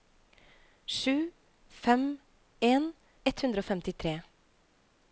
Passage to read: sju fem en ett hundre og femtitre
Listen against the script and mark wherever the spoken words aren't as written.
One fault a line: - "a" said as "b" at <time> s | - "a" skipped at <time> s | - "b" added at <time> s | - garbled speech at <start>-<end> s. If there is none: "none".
none